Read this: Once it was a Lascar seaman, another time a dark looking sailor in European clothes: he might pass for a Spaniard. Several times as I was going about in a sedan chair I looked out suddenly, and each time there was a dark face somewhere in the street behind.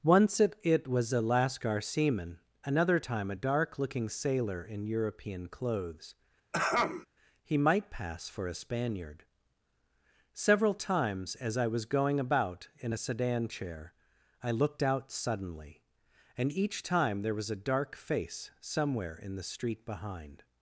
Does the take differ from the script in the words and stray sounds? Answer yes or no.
yes